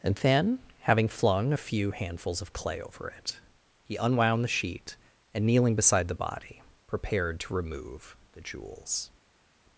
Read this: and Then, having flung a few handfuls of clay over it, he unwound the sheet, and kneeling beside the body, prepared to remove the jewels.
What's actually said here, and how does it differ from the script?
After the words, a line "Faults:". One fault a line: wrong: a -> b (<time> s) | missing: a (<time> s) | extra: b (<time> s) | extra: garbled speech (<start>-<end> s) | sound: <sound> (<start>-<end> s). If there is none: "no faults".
and Then, having flung a few handfuls of clay over it, he unwound the sheet, and kneeling beside the body, prepared to remove the jewels.
Faults:
no faults